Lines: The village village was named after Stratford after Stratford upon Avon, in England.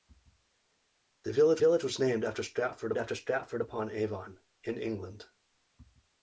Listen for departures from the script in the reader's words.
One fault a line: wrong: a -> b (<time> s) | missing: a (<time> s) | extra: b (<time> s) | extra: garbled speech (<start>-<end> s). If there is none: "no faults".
no faults